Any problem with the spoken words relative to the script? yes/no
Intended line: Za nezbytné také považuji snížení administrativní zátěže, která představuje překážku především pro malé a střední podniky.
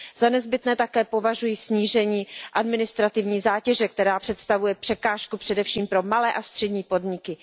no